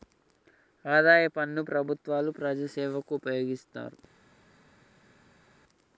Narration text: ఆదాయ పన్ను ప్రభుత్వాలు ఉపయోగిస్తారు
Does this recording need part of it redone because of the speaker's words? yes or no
yes